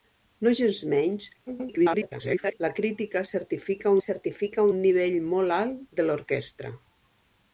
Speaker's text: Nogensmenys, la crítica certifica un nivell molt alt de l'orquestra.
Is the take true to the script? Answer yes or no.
no